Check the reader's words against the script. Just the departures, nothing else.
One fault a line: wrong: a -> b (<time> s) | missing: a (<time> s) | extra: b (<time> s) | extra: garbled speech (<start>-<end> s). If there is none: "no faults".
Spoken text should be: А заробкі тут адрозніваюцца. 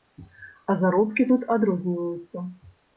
no faults